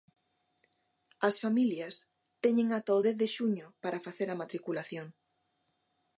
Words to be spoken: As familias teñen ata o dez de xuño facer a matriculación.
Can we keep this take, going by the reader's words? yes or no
no